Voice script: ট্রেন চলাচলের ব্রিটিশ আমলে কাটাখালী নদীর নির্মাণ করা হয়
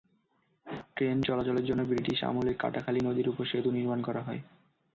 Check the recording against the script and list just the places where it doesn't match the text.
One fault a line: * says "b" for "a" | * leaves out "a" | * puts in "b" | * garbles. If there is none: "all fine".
* puts in "জন্য"
* puts in "ওপর সেতু"